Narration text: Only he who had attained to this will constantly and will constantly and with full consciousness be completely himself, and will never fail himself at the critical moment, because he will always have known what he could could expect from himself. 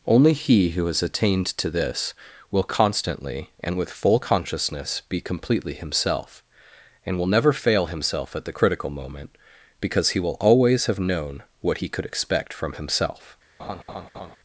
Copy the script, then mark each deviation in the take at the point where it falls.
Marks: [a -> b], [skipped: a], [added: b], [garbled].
Only he who [had -> has] attained to this will constantly and [skipped: will constantly and] with full consciousness be completely himself, and will never fail himself at the critical moment, because he will always have known what he could [skipped: could] expect from himself.